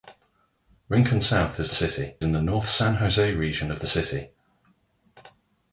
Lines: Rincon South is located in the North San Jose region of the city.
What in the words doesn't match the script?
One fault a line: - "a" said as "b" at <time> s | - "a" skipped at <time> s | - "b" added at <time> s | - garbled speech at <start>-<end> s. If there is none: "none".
- "located" said as "city" at 1.7 s